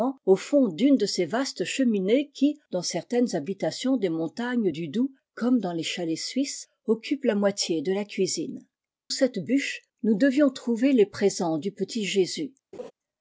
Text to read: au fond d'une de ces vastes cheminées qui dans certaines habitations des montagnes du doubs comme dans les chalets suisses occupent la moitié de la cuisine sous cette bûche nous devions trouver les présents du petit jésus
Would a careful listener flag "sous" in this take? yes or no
yes